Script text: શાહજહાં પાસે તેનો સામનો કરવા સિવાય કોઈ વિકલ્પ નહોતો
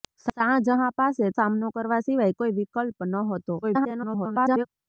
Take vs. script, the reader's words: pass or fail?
fail